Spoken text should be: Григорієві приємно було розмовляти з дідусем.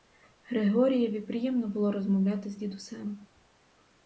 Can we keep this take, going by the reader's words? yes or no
yes